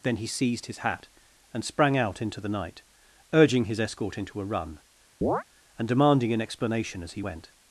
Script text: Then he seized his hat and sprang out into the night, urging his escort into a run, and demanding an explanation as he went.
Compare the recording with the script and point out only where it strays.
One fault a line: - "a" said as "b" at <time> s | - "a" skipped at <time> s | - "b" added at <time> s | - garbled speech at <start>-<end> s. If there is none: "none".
none